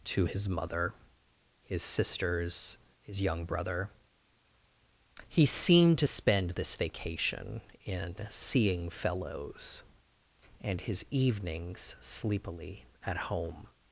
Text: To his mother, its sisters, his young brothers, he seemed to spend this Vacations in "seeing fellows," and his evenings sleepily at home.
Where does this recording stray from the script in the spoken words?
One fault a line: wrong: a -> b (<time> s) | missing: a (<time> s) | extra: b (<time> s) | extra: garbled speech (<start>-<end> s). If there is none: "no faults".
wrong: its -> his (1.6 s)
wrong: brothers -> brother (3.5 s)
wrong: Vacations -> Vacation (6.8 s)